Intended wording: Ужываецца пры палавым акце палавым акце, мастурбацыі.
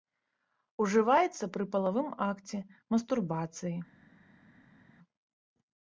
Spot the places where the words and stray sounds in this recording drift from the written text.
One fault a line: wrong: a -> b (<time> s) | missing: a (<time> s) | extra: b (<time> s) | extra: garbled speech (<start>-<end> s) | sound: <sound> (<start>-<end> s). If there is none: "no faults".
missing: палавым акце (2.6 s)